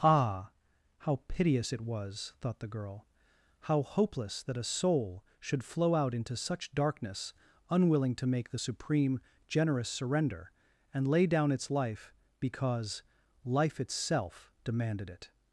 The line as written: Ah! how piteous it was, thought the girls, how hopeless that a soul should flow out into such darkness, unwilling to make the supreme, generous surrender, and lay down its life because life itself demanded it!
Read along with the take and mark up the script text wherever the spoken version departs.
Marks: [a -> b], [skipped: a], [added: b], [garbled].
Ah! how piteous it was, thought the [girls, -> girl] how hopeless that a soul should flow out into such darkness, unwilling to make the supreme, generous surrender, and lay down its life because life itself demanded it!